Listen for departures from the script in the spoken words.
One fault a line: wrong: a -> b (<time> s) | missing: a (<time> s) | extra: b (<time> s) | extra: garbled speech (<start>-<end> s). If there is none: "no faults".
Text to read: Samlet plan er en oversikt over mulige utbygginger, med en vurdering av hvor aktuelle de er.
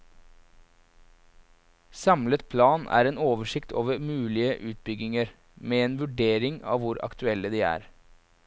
no faults